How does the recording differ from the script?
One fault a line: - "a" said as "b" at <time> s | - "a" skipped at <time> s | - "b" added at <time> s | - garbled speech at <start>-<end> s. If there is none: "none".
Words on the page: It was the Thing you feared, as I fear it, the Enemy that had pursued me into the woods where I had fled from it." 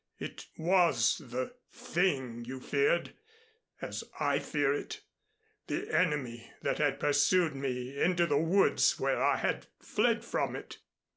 none